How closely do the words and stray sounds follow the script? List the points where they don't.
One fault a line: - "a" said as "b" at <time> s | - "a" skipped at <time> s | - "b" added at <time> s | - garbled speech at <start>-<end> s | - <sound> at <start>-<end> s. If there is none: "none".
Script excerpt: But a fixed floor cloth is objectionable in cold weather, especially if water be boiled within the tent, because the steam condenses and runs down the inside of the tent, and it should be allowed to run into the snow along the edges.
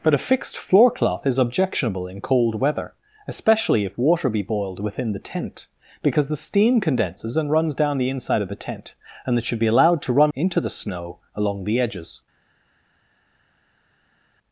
none